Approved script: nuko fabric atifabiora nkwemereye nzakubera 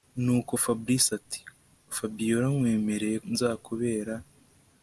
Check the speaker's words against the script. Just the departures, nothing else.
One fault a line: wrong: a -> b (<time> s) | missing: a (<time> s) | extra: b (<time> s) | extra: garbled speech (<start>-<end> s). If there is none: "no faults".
no faults